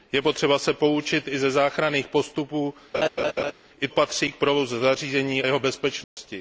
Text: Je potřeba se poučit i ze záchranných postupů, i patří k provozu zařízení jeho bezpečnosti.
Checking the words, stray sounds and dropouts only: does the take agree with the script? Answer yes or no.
no